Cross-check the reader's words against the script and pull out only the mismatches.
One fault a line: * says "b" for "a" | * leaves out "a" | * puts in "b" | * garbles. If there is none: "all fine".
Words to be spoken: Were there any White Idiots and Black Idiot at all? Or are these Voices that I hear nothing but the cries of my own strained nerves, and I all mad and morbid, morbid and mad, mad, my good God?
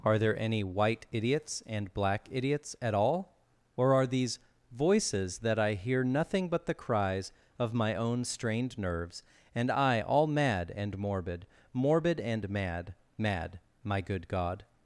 * says "Are" for "Were"
* says "Idiots" for "Idiot"